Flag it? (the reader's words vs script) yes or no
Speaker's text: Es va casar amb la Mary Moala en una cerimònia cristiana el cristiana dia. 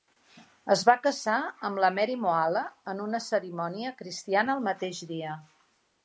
yes